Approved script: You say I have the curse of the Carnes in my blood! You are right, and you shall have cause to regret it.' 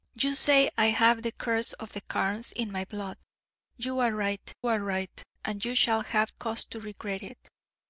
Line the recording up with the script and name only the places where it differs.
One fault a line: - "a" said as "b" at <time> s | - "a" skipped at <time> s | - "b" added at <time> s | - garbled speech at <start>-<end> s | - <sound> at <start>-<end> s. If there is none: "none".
- "are right" added at 4.7 s